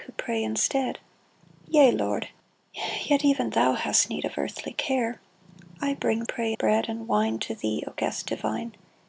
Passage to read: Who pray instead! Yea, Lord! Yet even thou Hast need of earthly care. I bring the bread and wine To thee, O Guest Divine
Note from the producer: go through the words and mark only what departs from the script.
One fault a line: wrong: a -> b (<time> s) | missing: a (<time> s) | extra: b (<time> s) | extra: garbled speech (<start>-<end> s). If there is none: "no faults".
wrong: the -> pray (6.2 s)